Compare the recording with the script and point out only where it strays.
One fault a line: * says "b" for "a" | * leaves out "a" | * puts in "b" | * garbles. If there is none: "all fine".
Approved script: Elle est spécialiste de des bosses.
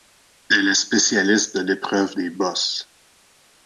* puts in "l'épreuve"